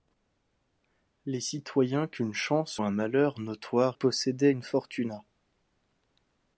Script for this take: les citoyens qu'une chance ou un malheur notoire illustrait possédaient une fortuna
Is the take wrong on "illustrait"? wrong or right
wrong